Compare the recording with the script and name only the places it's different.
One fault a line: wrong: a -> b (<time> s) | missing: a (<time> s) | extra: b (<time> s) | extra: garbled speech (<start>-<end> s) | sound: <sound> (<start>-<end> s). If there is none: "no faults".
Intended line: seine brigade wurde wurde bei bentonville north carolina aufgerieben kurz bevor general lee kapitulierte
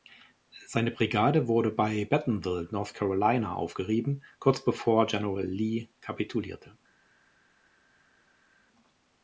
missing: wurde (1.7 s)